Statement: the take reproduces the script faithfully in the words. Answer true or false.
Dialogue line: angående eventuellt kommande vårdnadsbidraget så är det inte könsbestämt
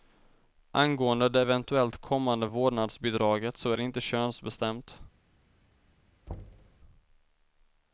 false